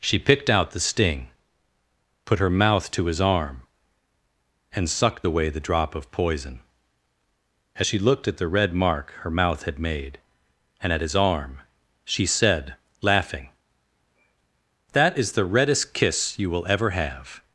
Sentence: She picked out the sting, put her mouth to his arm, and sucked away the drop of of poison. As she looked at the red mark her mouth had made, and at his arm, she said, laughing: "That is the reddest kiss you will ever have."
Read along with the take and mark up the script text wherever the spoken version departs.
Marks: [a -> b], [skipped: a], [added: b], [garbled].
She picked out the sting, put her mouth to his arm, and sucked away the drop of [skipped: of] poison. As she looked at the red mark her mouth had made, and at his arm, she said, laughing: "That is the reddest kiss you will ever have."